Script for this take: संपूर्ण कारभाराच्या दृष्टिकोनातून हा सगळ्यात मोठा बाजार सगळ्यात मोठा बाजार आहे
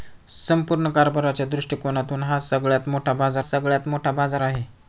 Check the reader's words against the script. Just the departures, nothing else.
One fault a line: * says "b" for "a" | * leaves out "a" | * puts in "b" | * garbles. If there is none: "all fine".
all fine